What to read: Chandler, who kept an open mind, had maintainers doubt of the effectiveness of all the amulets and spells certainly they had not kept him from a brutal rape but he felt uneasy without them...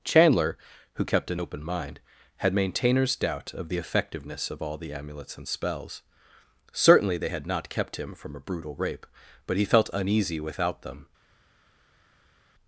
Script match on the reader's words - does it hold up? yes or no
yes